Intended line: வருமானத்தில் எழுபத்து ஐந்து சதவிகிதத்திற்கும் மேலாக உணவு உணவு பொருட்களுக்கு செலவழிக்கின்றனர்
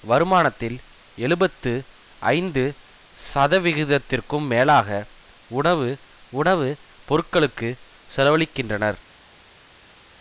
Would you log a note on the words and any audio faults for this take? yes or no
no